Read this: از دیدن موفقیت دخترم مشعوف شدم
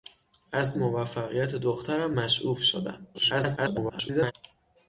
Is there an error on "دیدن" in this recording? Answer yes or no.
yes